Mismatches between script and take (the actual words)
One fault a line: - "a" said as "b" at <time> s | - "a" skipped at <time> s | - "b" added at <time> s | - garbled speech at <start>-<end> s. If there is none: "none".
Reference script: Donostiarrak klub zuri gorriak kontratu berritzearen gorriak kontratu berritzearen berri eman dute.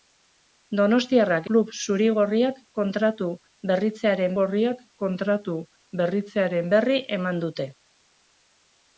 none